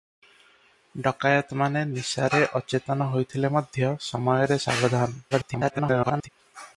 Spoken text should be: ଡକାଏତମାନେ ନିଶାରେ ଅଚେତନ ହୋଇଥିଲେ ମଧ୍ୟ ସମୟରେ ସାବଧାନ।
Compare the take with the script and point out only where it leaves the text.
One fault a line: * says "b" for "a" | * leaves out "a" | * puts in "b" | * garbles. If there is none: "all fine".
* garbles